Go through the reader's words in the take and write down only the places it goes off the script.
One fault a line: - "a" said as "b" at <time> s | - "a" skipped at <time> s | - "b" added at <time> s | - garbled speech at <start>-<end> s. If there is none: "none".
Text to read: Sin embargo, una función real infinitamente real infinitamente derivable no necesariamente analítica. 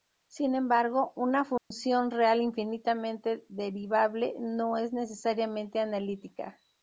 - "real infinitamente" skipped at 3.4 s
- "es" added at 4.8 s